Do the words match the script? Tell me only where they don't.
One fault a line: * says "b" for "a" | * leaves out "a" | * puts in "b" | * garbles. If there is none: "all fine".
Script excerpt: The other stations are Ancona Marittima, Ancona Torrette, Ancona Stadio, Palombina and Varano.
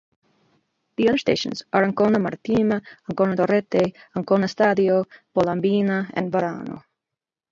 all fine